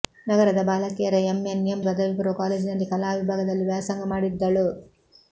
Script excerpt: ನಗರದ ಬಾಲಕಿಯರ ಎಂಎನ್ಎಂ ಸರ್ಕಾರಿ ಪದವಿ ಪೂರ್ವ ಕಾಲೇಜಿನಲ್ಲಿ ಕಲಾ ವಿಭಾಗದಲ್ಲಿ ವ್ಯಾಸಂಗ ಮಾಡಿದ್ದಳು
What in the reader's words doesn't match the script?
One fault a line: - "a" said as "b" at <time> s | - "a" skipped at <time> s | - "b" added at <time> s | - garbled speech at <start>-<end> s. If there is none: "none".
- "ಸರ್ಕಾರಿ" skipped at 1.8 s